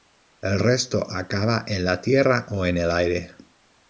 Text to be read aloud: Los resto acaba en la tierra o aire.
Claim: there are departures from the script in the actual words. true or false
true